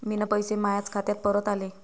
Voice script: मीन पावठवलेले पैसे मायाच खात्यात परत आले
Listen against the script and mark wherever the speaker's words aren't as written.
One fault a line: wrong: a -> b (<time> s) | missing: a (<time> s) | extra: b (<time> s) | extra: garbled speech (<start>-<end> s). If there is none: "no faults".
missing: पावठवलेले (0.2 s)